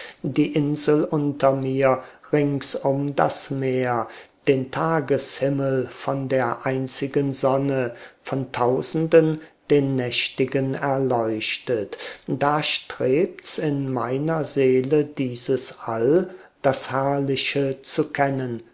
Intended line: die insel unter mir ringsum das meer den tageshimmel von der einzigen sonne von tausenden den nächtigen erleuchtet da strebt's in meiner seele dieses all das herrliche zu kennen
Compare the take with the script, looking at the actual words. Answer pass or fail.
pass